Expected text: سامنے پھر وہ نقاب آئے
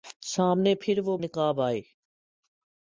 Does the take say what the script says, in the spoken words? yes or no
yes